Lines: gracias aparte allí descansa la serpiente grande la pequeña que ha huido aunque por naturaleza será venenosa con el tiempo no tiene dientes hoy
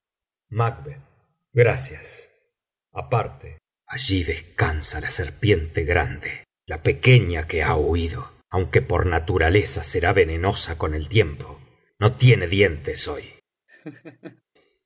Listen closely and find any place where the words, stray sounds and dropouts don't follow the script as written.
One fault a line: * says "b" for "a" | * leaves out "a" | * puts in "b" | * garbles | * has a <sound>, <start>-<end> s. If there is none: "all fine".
* has a laugh, 13.7-14.4 s